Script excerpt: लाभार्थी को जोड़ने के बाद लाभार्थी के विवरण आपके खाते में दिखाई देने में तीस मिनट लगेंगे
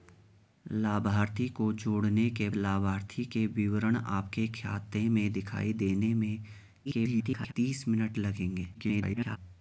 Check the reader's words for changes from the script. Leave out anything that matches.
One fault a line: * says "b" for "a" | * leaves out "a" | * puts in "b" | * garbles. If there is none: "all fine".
* leaves out "बाद"
* garbles
* garbles